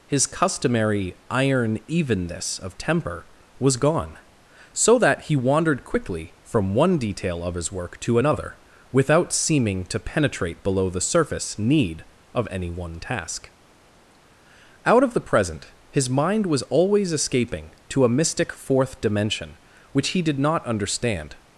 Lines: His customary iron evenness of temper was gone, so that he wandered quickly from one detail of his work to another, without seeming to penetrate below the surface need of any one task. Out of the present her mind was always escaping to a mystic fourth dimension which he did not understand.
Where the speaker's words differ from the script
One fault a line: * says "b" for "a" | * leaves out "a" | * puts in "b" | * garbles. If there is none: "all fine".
* says "his" for "her"